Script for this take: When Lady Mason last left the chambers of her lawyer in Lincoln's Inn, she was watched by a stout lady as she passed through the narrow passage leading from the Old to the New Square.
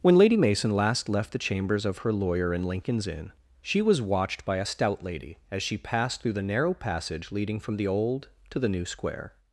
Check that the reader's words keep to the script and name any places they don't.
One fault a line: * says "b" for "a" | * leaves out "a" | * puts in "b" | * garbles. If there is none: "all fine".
all fine